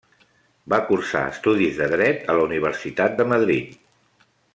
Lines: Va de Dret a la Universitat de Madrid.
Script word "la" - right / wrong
right